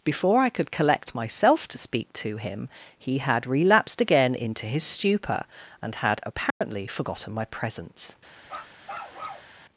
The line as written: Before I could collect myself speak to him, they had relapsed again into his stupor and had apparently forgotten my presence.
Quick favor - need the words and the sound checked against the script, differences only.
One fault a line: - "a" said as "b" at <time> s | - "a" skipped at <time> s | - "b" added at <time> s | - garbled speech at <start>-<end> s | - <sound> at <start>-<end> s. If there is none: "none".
- "to" added at 1.7 s
- "they" said as "he" at 3.0 s
- dropout at 6.5-6.6 s
- bark at 8.4-9.5 s